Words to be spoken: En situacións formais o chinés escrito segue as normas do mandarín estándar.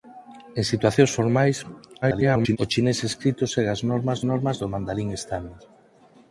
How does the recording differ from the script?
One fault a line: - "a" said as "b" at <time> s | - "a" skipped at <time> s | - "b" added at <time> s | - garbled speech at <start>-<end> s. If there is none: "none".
- garbled speech at 2.0-2.6 s
- "normas" added at 4.3 s